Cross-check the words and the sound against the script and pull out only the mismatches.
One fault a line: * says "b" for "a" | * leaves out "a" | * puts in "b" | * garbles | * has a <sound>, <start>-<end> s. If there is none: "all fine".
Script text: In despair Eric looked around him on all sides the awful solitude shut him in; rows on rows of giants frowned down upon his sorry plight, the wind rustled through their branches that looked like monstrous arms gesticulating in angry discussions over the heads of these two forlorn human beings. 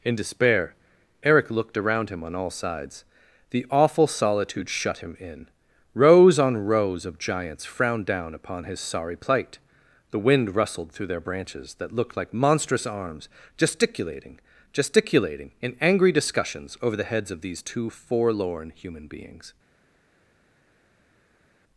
* puts in "gesticulating"